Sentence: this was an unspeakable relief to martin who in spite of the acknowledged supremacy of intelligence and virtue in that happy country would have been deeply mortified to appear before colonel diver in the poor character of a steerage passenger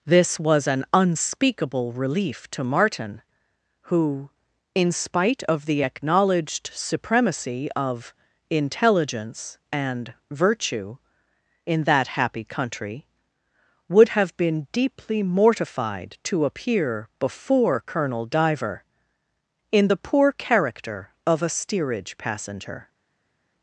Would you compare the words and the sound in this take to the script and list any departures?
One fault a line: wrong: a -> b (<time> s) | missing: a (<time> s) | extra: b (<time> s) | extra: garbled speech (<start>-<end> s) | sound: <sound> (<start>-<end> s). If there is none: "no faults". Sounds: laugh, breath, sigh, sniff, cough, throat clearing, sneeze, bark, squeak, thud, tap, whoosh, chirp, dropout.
no faults